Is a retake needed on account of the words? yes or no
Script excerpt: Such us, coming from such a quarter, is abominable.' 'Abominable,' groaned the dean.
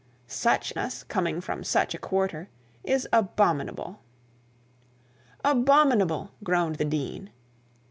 no